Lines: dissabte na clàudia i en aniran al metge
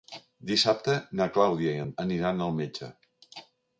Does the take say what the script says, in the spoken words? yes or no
yes